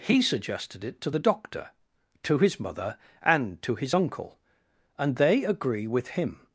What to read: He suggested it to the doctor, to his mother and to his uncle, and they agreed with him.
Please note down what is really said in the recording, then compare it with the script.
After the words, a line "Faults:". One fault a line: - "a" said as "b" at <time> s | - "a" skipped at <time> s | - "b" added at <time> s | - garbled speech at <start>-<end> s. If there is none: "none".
He suggested it to the doctor, to his mother and to his uncle, and they agree with him.
Faults:
- "agreed" said as "agree" at 5.5 s